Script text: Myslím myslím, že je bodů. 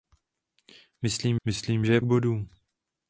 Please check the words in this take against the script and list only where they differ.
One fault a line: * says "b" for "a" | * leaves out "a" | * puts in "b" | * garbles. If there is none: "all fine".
all fine